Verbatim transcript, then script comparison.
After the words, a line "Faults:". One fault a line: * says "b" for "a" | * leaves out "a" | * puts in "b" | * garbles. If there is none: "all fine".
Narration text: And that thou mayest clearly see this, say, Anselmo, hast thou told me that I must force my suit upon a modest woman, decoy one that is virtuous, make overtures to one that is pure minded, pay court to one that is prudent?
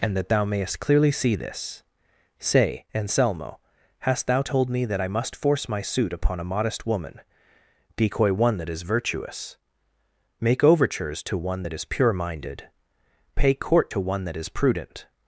And that thou mayest clearly see this, say, Anselmo, hast thou told me that I must force my suit upon a modest woman, decoy one that is virtuous, make overtures to one that is pure minded, pay court to one that is prudent?
Faults:
all fine